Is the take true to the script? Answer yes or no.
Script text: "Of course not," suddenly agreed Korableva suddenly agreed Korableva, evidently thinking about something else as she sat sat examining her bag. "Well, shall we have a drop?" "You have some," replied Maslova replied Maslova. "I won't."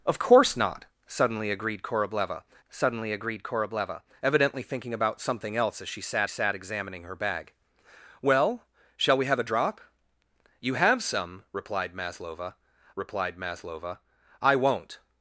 yes